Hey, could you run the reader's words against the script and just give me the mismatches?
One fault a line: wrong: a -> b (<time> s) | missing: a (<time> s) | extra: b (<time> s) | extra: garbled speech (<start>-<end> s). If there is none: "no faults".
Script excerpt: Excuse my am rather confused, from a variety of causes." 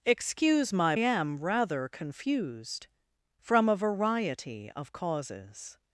no faults